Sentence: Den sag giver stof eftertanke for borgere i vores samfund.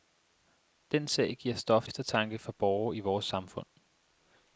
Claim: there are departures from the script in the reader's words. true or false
false